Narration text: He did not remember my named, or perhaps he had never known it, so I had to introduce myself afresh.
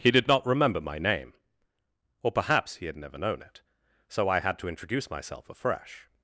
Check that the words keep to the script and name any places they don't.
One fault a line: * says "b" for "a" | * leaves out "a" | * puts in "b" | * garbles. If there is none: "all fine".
* says "name" for "named"